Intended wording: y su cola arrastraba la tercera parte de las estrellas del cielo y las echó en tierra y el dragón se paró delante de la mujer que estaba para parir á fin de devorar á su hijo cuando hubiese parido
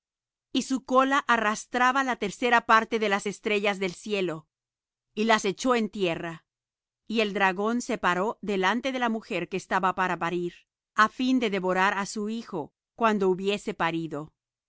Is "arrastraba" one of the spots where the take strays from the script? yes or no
no